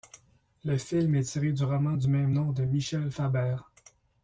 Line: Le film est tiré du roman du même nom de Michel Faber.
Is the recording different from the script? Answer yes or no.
no